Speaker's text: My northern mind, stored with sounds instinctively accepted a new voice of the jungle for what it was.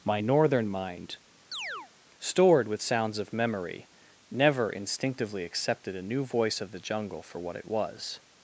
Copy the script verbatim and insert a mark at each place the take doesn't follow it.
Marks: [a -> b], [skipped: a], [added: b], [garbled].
My northern mind, stored with sounds [added: of memory never] instinctively accepted a new voice of the jungle for what it was.